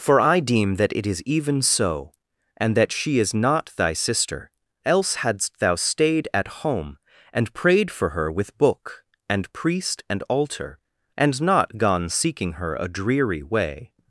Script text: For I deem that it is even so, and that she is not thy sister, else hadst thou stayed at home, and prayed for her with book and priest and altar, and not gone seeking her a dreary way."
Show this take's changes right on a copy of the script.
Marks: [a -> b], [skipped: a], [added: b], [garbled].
For I deem that it is even so, and that she is not thy sister, else hadst thou stayed at home, and prayed for her with book and priest and altar, and not gone seeking her a dreary way."